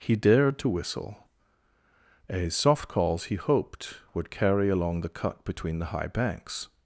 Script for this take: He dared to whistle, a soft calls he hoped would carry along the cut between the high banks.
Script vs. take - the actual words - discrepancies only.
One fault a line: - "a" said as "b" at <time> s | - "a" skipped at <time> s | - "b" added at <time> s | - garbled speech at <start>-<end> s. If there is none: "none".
none